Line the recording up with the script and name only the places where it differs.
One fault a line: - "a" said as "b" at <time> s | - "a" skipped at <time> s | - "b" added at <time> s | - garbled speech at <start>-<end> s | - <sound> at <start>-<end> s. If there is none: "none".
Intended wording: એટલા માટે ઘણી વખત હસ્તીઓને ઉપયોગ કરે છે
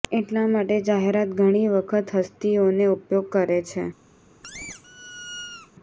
- "જાહેરાત" added at 0.8 s
- squeak at 4.4-5.7 s